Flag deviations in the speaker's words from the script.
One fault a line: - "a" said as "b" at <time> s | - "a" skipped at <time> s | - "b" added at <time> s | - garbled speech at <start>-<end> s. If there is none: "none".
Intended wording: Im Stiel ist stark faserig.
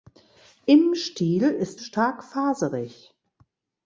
none